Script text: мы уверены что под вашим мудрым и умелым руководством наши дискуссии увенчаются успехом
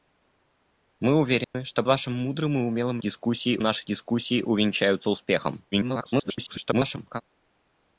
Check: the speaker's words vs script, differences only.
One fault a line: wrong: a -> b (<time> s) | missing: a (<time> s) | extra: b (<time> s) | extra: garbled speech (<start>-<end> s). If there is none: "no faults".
missing: под (1.8 s)
wrong: руководством -> дискуссии (3.0 s)
extra: garbled speech (5.7-7.2 s)